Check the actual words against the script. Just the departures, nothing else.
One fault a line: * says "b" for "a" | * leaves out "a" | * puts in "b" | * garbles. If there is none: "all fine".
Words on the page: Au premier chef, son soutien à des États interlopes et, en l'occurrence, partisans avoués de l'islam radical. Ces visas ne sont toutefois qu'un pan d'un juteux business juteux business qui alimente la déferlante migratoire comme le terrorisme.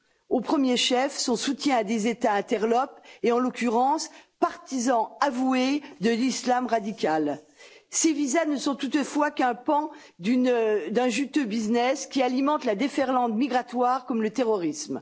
* leaves out "juteux business"